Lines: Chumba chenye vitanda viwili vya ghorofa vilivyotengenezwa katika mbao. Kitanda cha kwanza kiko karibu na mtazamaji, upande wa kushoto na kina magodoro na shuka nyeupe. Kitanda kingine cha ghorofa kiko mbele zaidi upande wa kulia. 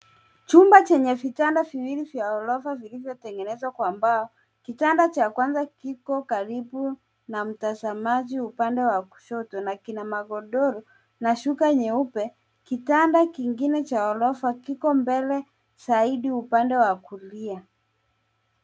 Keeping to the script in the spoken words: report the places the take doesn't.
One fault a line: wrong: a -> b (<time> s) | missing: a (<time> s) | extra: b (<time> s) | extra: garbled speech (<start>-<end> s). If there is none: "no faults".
wrong: katika -> kwa (3.7 s)